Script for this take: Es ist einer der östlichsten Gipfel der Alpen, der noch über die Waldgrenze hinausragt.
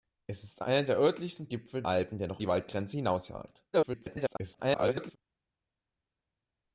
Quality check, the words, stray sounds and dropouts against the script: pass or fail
fail